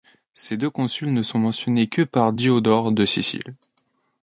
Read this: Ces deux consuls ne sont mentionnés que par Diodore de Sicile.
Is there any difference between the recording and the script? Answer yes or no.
no